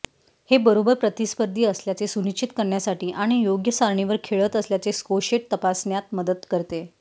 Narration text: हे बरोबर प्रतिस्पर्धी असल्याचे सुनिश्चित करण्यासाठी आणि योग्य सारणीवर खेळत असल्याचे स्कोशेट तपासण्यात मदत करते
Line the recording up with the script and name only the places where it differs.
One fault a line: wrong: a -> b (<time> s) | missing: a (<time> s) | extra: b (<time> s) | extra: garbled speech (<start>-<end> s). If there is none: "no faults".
no faults